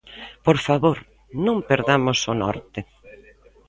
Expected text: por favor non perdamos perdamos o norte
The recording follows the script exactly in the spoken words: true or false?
false